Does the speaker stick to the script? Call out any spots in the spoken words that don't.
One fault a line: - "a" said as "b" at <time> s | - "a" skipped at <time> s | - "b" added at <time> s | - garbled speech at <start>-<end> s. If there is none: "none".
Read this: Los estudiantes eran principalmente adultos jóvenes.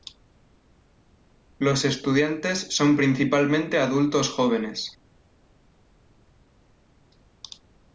- "eran" said as "son" at 2.8 s